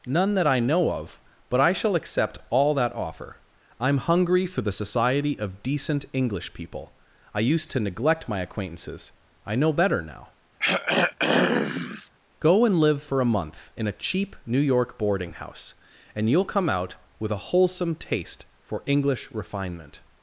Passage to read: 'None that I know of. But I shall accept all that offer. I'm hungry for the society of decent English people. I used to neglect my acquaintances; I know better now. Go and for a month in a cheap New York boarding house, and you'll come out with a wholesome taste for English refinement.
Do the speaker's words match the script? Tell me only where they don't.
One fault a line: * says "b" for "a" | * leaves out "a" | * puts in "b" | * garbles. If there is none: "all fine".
* puts in "live"